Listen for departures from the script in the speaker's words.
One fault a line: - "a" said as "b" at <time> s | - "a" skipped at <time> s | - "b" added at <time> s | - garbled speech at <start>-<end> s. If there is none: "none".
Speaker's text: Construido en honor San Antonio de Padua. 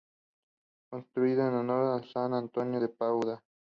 none